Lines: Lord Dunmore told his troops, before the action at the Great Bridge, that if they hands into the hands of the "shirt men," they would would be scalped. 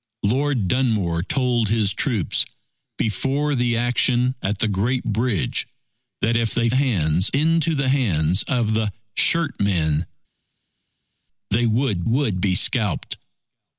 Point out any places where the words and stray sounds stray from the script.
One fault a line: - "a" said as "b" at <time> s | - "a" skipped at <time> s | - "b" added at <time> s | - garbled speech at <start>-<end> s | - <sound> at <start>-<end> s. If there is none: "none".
none